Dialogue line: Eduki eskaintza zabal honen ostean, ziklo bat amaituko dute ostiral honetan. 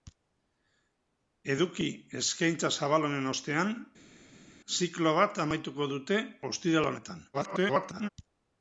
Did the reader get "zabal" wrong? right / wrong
right